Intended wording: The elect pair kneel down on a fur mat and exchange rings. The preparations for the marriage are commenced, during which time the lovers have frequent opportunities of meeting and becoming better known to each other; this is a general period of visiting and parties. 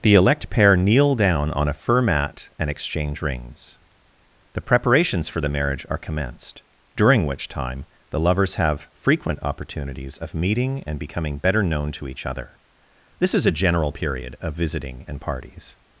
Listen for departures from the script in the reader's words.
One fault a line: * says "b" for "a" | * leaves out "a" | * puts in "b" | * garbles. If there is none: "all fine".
all fine